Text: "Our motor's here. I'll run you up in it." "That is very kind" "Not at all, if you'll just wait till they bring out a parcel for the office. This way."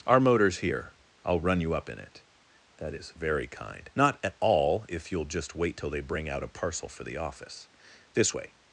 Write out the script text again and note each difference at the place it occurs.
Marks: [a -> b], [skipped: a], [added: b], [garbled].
"Our motor's here. I'll run you up in it." "That is very kind" "Not at all, if you'll just wait till they bring out a parcel for the office. This way."